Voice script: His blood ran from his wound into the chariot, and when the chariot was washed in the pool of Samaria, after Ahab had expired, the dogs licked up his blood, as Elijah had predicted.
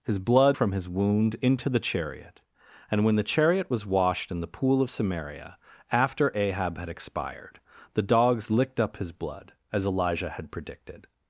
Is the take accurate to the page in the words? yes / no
no